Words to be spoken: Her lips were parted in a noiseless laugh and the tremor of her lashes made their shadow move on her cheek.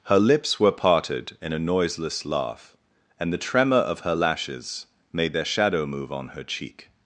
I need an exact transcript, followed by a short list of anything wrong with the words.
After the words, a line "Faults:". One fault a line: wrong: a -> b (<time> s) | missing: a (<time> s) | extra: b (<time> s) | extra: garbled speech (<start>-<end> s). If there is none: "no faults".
Her lips were parted in a noiseless laugh and the tremor of her lashes made their shadow move on her cheek.
Faults:
no faults